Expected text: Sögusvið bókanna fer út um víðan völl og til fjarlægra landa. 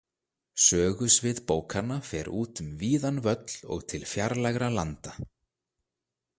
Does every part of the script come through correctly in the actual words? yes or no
yes